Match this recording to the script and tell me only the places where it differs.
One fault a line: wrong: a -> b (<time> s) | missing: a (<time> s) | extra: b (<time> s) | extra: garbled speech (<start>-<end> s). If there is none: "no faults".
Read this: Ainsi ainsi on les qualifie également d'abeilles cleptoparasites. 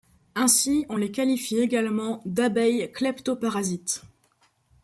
missing: ainsi (0.9 s)